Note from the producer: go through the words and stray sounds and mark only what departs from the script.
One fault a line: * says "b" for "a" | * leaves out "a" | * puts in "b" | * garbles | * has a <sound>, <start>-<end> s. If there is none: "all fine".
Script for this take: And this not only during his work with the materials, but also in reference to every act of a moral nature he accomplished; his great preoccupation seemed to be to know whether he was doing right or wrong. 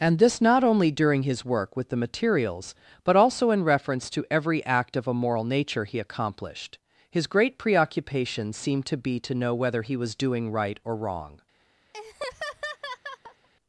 * has a laugh, 11.9-13.5 s